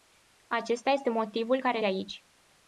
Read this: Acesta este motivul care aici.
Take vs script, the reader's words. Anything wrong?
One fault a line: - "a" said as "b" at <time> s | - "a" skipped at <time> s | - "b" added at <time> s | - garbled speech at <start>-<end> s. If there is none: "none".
none